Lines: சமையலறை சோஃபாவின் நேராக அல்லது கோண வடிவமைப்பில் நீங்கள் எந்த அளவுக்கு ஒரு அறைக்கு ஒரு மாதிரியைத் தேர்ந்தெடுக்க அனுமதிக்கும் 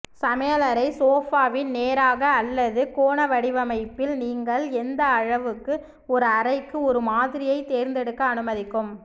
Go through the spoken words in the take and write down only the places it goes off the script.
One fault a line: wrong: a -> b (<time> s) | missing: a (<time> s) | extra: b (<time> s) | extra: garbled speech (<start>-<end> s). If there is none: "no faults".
no faults